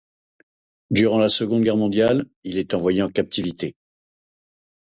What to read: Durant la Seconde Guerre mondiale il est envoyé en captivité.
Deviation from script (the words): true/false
false